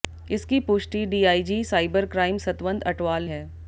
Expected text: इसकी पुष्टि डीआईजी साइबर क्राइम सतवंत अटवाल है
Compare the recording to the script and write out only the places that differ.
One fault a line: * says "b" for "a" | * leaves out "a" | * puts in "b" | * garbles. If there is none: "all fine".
all fine